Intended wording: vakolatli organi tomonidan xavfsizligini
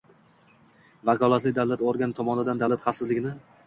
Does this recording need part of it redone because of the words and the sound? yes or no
yes